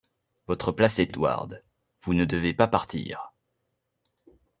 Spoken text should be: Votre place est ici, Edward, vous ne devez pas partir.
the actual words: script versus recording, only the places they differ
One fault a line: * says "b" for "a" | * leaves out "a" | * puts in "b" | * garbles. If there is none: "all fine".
* leaves out "ici"